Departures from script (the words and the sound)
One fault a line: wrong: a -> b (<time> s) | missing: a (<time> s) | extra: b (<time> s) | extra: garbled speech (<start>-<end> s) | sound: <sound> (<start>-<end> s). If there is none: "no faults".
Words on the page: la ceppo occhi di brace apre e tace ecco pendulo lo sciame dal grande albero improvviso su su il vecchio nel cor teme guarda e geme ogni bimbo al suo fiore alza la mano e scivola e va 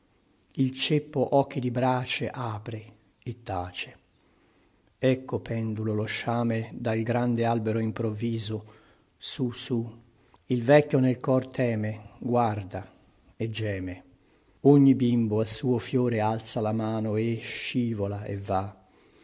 wrong: la -> il (0.5 s)